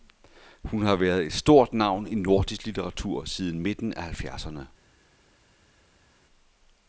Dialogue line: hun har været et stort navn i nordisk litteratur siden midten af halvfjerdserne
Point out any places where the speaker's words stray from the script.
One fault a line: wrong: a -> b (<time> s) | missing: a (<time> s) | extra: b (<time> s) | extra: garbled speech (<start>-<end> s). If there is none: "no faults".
no faults